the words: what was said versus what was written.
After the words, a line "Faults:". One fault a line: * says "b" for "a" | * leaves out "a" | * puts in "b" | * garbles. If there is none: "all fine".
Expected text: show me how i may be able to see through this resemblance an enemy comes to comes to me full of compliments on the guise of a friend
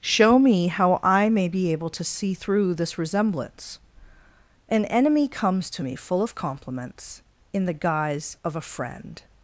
show me how i may be able to see through this resemblance an enemy comes to me full of compliments in the guise of a friend
Faults:
* leaves out "comes to"
* says "in" for "on"